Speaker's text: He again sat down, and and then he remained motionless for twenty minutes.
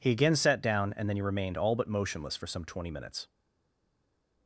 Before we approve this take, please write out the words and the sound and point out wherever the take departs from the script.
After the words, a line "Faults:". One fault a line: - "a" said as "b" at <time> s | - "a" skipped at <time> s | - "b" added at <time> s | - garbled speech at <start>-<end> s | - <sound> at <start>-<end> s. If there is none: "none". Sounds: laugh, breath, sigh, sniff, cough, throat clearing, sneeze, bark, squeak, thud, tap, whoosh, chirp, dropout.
He again sat down, and then he remained all but motionless for some twenty minutes.
Faults:
- "and" skipped at 1.1 s
- "all but" added at 1.6 s
- "some" added at 2.5 s